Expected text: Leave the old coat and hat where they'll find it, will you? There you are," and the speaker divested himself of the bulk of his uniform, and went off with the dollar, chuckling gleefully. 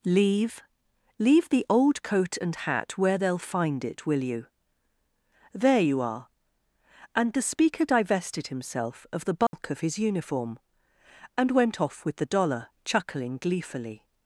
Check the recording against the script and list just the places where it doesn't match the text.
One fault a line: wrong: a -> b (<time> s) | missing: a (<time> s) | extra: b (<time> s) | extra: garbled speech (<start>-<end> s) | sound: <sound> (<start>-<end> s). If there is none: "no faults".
extra: leave (1.2 s)
sound: dropout (9.5-9.5 s)